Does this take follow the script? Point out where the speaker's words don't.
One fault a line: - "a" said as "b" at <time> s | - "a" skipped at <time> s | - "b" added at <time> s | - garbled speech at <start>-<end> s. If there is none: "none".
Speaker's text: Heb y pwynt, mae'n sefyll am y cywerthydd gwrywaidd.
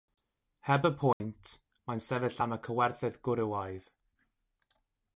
none